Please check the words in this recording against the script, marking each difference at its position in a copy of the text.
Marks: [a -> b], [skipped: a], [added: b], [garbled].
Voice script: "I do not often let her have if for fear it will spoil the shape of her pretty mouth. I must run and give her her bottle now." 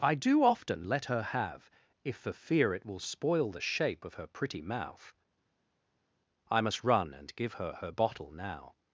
"I do [skipped: not] often let her have if for fear it will spoil the shape of her pretty mouth. I must run and give her her bottle now."